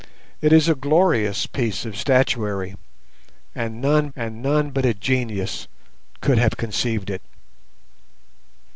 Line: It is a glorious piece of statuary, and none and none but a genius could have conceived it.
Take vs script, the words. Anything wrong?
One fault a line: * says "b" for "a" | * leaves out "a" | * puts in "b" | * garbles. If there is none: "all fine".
all fine